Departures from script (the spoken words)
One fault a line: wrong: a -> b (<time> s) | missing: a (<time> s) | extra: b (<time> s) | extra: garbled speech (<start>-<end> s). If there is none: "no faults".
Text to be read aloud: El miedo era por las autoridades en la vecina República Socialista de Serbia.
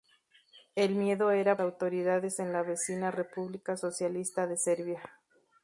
missing: por las (1.6 s)